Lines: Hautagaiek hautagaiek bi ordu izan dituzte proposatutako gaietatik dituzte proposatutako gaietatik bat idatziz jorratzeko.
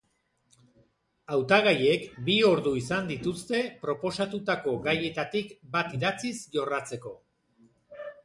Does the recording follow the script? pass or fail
fail